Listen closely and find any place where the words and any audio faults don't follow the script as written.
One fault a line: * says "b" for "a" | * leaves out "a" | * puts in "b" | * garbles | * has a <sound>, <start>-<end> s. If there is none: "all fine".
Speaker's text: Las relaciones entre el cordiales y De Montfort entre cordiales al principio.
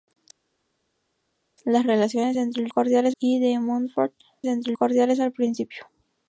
all fine